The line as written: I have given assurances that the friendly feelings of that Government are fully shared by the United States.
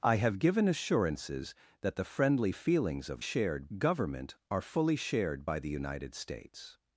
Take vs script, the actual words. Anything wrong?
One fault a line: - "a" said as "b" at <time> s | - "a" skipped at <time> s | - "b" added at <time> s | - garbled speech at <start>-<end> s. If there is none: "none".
- "that" said as "shared" at 3.2 s